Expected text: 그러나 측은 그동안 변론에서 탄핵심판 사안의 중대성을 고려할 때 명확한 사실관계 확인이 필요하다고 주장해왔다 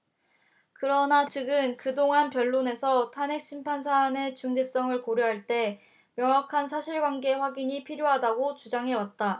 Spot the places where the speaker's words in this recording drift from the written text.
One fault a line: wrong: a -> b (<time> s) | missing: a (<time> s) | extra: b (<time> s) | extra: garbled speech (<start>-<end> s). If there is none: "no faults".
no faults